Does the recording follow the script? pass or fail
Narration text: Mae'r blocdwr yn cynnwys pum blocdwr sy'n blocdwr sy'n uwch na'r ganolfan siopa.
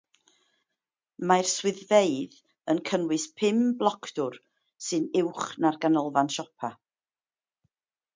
fail